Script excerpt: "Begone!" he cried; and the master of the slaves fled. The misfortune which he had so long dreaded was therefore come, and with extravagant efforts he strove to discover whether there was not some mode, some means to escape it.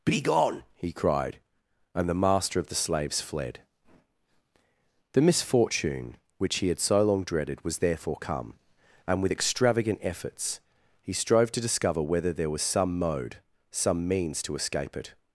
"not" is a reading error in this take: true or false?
true